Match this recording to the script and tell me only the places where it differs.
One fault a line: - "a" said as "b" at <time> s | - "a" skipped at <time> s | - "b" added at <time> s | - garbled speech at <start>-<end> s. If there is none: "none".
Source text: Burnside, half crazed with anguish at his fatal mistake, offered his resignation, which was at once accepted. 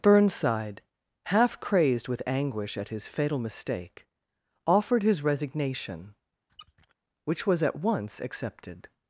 none